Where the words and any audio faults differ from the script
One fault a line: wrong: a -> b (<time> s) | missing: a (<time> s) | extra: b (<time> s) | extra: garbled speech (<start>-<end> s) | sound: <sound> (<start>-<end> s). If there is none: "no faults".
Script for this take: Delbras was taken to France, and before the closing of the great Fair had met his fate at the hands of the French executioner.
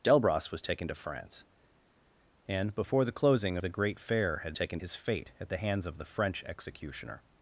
missing: of (3.6 s)
wrong: met -> taken (4.5 s)